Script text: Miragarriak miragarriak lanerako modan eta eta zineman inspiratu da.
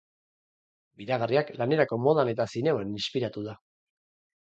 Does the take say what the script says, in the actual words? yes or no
no